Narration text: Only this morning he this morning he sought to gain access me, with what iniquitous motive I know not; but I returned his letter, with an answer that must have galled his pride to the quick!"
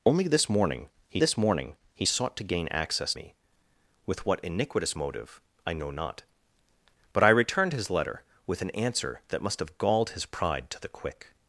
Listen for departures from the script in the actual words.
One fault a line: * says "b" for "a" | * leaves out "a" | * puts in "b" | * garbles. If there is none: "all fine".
all fine